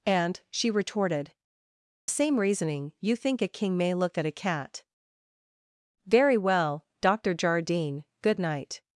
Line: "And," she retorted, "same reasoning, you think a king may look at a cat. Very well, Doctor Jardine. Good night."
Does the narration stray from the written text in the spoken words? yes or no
no